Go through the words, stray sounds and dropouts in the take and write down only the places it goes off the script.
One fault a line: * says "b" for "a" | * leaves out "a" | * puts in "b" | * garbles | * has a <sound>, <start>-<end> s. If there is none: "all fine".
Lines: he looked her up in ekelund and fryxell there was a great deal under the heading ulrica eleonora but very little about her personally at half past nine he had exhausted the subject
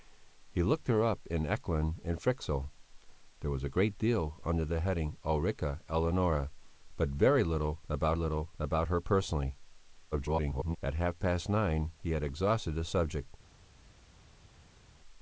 * puts in "little about"
* garbles